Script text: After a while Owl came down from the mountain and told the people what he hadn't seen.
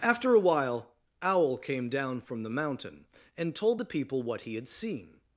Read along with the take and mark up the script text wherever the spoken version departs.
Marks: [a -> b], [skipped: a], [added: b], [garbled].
After a while Owl came down from the mountain and told the people what he [hadn't -> had] seen.